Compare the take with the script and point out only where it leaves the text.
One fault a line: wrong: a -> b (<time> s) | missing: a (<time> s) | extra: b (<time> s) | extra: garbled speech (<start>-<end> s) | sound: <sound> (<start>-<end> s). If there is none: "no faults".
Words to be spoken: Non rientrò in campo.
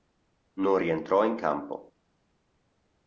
no faults